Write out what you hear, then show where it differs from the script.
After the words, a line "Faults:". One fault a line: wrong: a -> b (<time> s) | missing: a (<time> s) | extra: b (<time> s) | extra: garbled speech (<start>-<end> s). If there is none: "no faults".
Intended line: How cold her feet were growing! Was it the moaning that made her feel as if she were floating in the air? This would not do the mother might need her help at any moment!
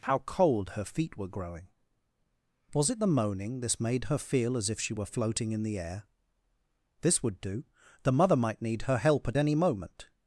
How cold her feet were growing! Was it the moaning this made her feel as if she were floating in the air? This would do the mother might need her help at any moment!
Faults:
wrong: that -> this (3.6 s)
missing: not (7.4 s)